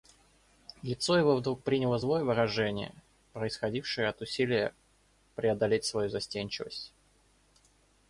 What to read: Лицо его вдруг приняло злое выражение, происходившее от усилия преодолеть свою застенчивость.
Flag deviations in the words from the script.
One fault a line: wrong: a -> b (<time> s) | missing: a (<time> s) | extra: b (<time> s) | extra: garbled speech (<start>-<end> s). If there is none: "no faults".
no faults